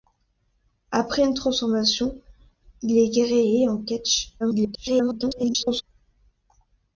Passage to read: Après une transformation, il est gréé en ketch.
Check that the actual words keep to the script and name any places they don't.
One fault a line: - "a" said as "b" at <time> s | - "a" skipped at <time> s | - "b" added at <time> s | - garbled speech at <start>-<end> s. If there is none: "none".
- garbled speech at 4.4-5.8 s